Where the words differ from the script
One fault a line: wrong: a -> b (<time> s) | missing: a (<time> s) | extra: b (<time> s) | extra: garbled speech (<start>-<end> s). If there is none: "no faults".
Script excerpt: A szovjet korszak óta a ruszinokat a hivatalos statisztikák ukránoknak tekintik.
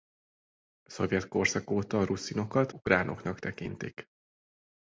missing: a hivatalos statisztikák (2.7 s)